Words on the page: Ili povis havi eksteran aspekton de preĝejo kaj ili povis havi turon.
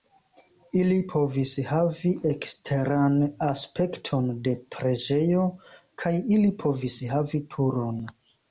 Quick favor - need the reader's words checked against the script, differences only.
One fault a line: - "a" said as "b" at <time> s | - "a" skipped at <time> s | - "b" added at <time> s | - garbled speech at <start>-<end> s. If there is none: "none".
none